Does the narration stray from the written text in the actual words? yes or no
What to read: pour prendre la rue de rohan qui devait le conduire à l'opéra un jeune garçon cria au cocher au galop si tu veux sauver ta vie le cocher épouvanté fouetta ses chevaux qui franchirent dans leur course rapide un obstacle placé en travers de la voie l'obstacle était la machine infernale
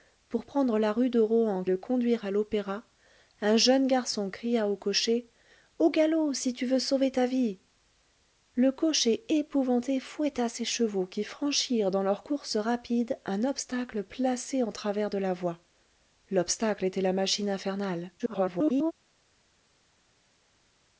yes